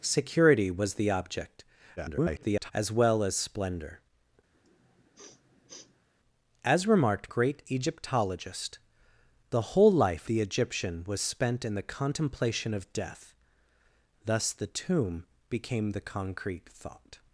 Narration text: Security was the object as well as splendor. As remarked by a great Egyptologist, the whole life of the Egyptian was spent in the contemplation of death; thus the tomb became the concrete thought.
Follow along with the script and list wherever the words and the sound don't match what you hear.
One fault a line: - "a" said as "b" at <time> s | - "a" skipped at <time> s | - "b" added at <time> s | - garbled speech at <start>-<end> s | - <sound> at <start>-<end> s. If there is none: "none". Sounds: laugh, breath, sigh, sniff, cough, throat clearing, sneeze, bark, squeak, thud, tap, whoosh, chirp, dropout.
- garbled speech at 2.0-2.7 s
- sniff at 4.5-6.1 s
- "by a" skipped at 7.3 s
- "of" skipped at 10.3 s